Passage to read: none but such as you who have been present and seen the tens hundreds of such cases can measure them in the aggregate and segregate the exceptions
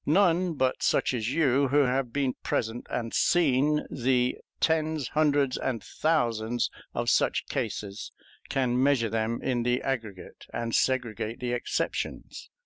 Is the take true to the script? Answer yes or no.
no